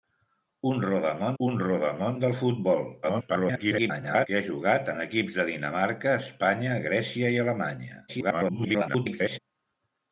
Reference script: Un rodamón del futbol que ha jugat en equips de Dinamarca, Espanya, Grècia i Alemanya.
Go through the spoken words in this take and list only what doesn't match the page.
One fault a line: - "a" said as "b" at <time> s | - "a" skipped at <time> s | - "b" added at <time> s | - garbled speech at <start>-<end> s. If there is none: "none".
- "un rodamón" added at 1.4 s
- garbled speech at 3.0-4.3 s
- garbled speech at 8.1-9.4 s